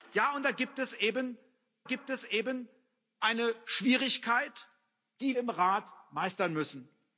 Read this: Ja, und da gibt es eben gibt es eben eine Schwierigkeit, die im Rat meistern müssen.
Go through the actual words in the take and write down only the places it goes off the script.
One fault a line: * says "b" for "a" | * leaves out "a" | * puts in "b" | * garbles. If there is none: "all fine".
all fine